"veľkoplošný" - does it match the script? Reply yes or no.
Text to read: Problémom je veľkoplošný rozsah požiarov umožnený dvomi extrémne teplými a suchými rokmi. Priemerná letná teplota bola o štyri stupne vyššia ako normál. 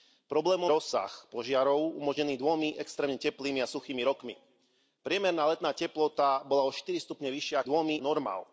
no